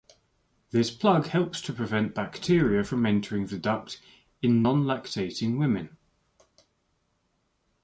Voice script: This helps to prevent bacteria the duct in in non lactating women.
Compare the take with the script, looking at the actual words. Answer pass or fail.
fail